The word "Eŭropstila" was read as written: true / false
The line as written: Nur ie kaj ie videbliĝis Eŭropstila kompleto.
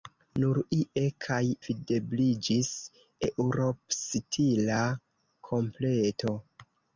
true